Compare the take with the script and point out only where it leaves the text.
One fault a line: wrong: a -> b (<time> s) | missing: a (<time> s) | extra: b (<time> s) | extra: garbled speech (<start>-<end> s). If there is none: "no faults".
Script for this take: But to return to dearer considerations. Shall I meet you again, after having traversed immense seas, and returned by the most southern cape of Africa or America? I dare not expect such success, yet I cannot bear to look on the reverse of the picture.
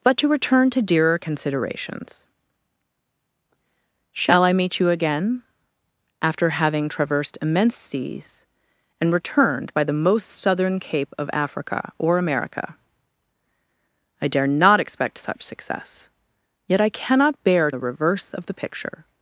missing: to look on (17.7 s)